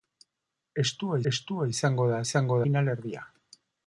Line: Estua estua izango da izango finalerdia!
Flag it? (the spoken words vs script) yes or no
no